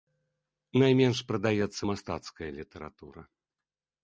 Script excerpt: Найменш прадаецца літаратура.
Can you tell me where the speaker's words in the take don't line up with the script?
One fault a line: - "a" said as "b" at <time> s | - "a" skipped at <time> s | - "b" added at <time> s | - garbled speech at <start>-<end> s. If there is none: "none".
- "мастацкая" added at 1.9 s